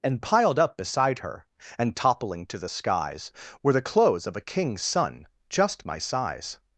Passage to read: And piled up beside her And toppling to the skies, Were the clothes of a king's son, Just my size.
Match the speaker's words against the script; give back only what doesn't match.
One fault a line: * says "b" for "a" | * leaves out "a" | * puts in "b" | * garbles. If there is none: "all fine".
all fine